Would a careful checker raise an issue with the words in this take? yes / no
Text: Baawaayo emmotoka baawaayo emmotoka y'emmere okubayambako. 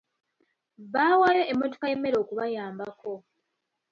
yes